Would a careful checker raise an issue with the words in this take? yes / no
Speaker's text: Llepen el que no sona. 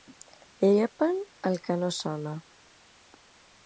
no